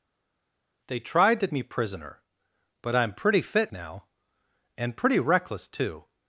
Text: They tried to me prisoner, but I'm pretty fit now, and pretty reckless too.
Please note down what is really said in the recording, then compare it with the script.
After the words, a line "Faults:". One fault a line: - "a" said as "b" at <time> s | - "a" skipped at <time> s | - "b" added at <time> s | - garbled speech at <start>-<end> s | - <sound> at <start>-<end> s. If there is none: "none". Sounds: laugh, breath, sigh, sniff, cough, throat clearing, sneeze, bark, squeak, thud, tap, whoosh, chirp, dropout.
They tried to me prisoner, but I'm pretty fit now, and pretty reckless too.
Faults:
none